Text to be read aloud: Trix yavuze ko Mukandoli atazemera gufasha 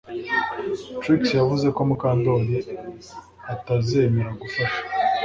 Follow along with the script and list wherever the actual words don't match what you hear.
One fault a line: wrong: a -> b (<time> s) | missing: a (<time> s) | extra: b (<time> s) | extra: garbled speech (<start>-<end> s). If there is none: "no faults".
no faults